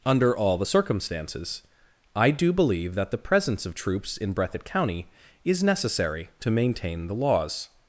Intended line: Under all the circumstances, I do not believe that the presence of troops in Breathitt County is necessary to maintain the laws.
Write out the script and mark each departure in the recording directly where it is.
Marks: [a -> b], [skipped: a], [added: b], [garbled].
Under all the circumstances, I do [skipped: not] believe that the presence of troops in Breathitt County is necessary to maintain the laws.